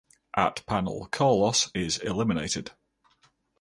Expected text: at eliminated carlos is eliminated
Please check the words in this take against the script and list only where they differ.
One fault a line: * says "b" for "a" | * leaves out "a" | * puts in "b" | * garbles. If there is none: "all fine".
* says "panel" for "eliminated"